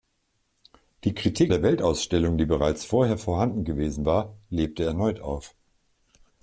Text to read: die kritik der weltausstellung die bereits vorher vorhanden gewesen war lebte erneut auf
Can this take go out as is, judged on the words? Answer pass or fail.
pass